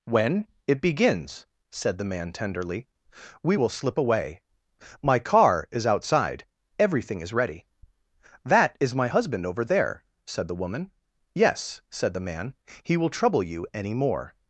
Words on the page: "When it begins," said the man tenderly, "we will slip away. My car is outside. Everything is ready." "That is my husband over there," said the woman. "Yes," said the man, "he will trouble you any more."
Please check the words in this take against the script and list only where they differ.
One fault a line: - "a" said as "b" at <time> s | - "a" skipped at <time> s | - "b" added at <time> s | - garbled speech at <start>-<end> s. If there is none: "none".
none